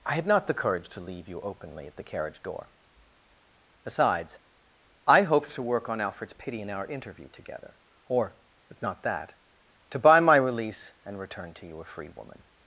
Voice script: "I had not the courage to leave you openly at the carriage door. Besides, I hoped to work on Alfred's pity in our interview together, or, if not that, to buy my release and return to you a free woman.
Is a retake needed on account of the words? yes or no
no